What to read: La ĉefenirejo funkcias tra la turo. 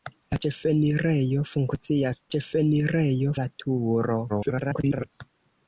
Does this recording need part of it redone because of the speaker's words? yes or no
yes